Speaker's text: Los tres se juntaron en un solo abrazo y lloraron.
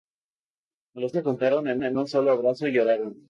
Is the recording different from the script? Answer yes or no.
yes